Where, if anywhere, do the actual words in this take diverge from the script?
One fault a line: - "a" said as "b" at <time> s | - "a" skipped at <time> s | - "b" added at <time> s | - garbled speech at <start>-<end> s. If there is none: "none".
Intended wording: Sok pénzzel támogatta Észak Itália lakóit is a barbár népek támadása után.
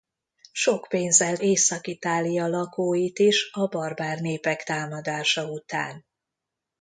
- "támogatta" skipped at 1.4 s